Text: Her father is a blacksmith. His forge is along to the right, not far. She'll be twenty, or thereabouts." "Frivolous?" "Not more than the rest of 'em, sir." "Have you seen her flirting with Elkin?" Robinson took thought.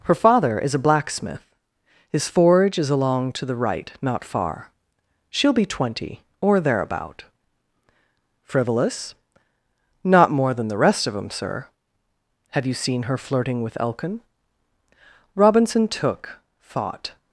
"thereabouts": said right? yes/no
no